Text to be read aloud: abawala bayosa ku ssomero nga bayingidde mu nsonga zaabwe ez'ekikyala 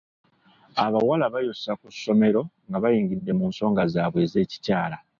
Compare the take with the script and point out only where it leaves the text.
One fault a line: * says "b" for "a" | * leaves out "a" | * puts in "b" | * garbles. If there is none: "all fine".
all fine